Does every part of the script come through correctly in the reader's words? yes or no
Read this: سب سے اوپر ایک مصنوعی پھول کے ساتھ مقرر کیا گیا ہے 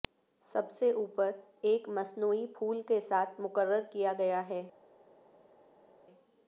yes